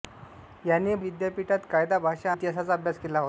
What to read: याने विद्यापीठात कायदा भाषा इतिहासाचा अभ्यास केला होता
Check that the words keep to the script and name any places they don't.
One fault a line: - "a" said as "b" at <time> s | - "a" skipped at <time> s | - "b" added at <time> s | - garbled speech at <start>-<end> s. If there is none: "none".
none